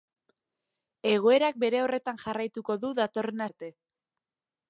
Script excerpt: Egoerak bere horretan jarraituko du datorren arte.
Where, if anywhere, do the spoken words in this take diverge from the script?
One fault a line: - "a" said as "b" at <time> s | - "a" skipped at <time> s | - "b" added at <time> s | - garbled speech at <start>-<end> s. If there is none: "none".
none